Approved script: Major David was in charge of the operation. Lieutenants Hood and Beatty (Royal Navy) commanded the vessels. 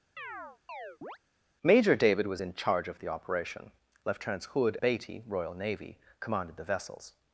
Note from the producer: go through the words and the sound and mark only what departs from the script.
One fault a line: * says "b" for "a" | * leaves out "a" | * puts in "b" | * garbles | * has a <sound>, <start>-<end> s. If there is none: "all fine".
* has a chirp, 0.2-1.2 s
* leaves out "and"